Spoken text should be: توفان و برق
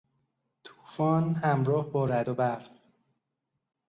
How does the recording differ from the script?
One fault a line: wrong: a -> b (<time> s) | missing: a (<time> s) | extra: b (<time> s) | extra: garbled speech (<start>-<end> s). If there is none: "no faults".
extra: همراه با رعد (1.3 s)